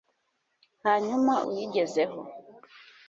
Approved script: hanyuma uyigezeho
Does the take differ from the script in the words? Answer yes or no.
no